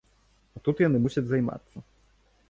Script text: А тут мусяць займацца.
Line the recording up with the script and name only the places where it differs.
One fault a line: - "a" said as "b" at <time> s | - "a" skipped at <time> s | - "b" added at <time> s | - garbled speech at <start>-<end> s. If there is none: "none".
- "яны" added at 0.8 s